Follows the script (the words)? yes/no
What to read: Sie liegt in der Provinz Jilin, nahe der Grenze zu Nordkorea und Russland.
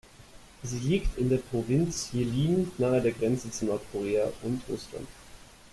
yes